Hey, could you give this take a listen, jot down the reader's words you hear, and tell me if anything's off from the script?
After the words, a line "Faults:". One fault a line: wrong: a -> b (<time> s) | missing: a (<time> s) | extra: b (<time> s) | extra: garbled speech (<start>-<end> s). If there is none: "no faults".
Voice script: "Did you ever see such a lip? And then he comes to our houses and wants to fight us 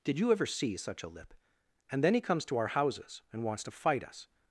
"Did you ever see such a lip? And then he comes to our houses and wants to fight us
Faults:
no faults